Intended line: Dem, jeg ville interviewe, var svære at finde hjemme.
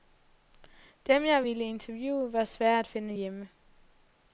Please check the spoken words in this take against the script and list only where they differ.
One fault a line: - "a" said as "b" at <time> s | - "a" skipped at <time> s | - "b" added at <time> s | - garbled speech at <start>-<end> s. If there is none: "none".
none